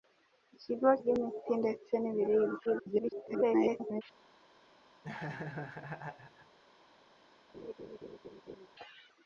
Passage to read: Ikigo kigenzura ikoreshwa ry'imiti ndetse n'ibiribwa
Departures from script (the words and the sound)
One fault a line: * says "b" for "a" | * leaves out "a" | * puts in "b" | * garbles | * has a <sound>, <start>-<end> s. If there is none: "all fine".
* leaves out "kigenzura ikoreshwa"
* garbles
* has a laugh, 5.0-6.6 s
* has a laugh, 7.5-8.7 s